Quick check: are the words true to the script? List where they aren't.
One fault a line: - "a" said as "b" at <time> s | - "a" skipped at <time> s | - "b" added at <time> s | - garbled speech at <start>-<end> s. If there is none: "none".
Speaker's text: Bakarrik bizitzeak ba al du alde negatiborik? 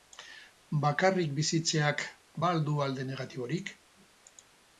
none